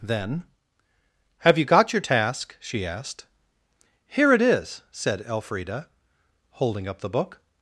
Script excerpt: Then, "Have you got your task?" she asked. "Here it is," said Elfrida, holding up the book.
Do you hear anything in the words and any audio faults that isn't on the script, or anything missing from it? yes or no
no